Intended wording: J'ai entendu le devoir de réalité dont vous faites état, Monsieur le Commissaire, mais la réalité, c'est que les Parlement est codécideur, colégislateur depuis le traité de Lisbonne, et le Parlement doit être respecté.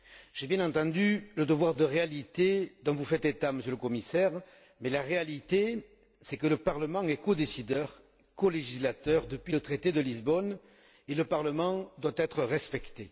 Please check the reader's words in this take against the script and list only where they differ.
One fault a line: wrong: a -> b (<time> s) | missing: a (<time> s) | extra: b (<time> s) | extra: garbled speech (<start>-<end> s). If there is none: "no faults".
extra: bien (0.5 s)
wrong: les -> le (6.5 s)